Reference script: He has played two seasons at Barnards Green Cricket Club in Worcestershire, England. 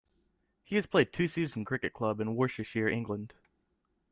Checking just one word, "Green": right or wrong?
wrong